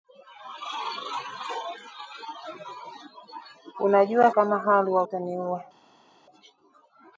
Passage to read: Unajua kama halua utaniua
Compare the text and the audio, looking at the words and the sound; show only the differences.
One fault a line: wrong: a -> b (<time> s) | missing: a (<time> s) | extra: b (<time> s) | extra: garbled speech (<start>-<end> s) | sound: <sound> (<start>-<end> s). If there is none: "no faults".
no faults